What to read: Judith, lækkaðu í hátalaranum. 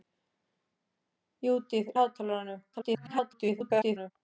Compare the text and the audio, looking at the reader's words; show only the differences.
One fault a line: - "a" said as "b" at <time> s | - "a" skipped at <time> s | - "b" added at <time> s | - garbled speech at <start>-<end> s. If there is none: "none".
- "lækkaðu" skipped at 1.9 s
- garbled speech at 2.7-4.1 s